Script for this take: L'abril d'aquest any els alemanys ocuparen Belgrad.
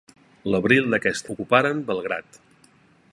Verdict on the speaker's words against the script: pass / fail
fail